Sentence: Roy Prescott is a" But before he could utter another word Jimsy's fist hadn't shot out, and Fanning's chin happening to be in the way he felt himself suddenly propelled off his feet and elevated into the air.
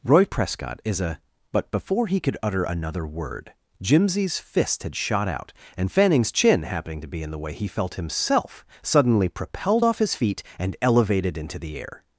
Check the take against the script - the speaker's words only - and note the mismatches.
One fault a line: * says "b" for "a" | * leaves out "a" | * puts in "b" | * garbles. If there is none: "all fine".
* says "had" for "hadn't"